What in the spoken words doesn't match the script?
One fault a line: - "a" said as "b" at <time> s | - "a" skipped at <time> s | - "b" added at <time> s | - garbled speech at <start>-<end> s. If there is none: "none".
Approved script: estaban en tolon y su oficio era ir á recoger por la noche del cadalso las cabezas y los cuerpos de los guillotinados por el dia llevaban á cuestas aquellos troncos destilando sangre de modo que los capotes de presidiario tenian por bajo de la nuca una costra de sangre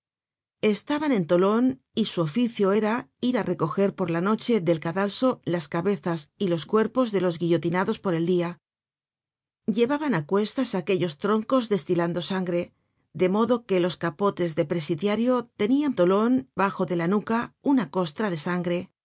- "por" said as "tolon" at 15.9 s